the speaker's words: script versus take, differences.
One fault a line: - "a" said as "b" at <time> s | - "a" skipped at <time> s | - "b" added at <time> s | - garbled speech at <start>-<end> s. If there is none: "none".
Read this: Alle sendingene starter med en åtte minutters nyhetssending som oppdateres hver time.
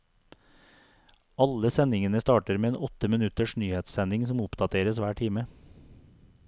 none